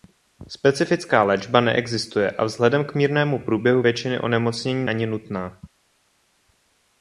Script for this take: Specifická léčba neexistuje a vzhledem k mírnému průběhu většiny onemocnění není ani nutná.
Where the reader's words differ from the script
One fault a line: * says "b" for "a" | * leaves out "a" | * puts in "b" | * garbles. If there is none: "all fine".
* leaves out "není"